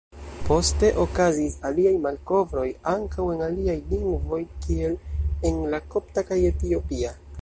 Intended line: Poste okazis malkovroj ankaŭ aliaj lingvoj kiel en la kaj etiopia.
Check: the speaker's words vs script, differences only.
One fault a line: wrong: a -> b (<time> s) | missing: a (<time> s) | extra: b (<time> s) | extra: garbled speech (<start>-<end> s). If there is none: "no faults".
extra: aliaj (1.7 s)
extra: en (3.4 s)
extra: kopta (6.0 s)